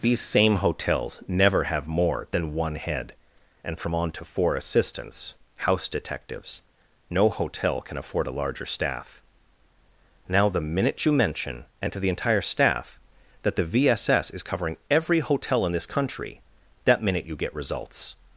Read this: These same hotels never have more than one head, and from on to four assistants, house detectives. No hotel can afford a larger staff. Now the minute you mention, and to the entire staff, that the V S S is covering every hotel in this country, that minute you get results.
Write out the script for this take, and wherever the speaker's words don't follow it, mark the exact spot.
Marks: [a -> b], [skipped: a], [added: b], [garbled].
These same hotels never have more than one head, and from on to four assistants, house detectives. No hotel can afford a larger staff. Now the minute you mention, and to the entire staff, that the V S S is covering every hotel in this country, that minute you get results.